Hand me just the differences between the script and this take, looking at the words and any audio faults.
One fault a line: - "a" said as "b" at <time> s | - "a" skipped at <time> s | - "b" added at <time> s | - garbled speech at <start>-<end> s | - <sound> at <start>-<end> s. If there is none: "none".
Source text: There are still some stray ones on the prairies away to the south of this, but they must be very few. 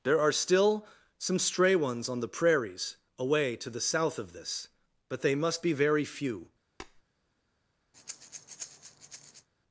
- tap at 6.8-7.0 s
- breath at 7.9-9.5 s